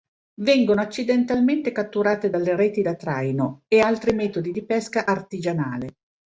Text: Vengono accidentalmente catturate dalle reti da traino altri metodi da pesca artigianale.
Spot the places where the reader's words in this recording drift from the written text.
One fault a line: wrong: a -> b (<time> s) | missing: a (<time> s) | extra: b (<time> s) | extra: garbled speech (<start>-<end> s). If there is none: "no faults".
extra: e (3.7 s)
wrong: da -> di (4.5 s)